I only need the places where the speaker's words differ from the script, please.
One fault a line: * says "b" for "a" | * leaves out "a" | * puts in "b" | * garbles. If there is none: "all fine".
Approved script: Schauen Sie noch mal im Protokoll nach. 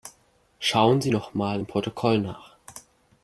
all fine